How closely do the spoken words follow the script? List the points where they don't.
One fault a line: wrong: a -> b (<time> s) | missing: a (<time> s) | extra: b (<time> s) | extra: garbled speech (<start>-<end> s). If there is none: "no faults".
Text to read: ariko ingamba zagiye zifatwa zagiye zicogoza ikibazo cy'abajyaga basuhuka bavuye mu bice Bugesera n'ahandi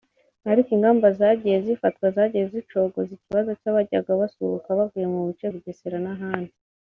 no faults